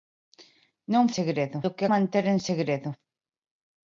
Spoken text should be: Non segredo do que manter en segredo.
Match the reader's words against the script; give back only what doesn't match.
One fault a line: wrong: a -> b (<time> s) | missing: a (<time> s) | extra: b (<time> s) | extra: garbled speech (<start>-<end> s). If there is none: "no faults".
no faults